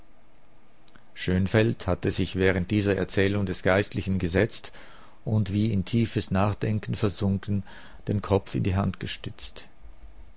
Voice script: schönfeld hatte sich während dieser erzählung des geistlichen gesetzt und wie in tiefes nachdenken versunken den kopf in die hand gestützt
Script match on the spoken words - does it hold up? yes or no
yes